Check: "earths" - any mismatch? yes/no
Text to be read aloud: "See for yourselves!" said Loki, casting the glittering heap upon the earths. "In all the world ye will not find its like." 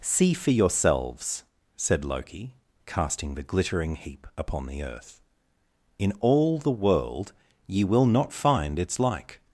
yes